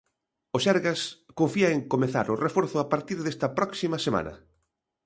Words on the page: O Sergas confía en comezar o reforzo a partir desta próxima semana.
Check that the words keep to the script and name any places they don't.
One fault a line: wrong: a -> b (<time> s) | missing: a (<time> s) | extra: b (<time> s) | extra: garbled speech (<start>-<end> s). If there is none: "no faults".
no faults